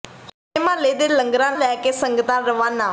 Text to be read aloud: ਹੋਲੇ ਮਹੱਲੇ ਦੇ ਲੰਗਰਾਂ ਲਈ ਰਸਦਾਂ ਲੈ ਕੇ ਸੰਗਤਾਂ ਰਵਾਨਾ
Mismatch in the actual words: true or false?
true